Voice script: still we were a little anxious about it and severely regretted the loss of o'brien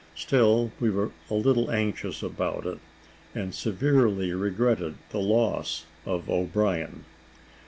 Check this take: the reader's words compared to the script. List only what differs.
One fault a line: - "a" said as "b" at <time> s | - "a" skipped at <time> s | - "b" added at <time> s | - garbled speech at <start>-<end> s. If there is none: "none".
none